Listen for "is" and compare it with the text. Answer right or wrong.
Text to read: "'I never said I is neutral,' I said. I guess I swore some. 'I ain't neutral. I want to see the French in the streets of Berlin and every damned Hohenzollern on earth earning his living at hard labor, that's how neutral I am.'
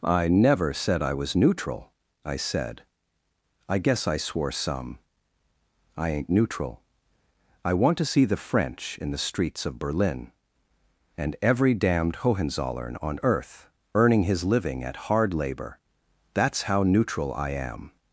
wrong